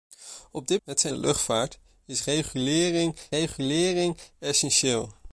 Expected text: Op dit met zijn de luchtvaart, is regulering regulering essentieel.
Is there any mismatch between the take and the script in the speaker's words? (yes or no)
no